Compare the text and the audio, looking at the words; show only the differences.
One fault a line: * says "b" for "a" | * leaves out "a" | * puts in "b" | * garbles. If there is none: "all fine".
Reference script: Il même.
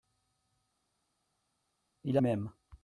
all fine